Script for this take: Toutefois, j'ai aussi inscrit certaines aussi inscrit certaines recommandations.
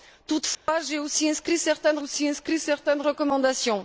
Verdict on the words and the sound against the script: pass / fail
fail